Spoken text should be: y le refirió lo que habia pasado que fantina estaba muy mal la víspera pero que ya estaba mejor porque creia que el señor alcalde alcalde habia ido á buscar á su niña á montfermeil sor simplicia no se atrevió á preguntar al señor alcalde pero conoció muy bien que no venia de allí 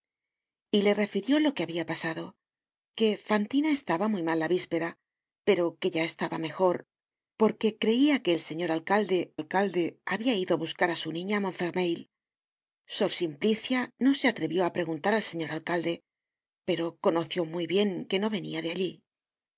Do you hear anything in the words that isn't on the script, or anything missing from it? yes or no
no